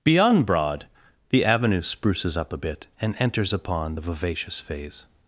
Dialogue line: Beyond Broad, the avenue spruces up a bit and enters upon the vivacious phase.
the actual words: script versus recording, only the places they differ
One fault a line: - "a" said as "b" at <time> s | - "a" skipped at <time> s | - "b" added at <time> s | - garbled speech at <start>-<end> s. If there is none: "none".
none